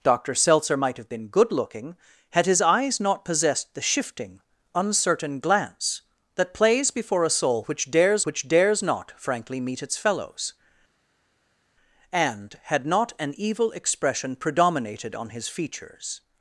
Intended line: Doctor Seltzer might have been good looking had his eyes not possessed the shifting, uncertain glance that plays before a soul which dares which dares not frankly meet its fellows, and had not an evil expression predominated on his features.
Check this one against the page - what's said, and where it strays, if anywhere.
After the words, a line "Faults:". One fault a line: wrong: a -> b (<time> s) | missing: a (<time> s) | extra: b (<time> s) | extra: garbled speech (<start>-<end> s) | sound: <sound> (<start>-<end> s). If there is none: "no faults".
Doctor Seltzer might have been good looking had his eyes not possessed the shifting, uncertain glance that plays before a soul which dares which dares not frankly meet its fellows, and had not an evil expression predominated on his features.
Faults:
no faults